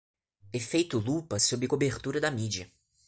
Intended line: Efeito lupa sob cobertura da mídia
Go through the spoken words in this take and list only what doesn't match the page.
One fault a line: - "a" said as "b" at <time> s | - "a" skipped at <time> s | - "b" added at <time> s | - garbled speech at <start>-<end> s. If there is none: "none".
none